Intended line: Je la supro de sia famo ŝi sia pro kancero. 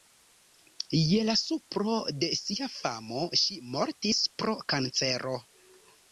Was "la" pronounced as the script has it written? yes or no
yes